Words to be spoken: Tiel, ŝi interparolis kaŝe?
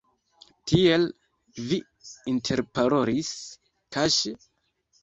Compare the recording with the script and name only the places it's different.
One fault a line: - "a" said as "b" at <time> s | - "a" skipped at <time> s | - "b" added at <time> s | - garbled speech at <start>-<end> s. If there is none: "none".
- "ŝi" said as "vi" at 1.7 s